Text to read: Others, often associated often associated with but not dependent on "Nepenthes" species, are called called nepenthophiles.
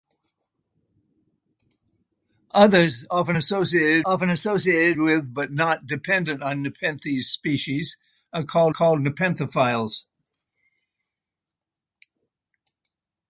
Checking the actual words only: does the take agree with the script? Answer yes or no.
yes